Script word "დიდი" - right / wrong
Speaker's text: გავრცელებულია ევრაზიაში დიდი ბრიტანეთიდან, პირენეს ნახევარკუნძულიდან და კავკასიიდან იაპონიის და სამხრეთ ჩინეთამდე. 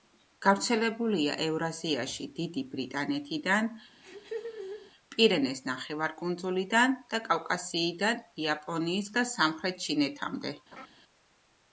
right